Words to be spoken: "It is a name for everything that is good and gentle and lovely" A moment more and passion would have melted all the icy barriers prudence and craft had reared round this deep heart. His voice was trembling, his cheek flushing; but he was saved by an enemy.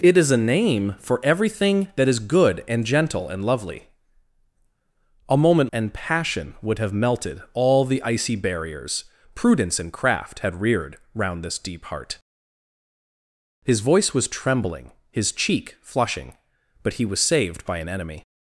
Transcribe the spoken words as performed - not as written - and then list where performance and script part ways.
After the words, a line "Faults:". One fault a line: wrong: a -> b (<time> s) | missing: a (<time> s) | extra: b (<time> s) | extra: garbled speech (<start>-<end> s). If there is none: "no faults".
"It is a name for everything that is good and gentle and lovely" A moment and passion would have melted all the icy barriers prudence and craft had reared round this deep heart. His voice was trembling, his cheek flushing; but he was saved by an enemy.
Faults:
missing: more (5.7 s)